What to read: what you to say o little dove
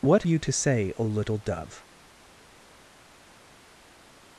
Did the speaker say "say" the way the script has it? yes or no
yes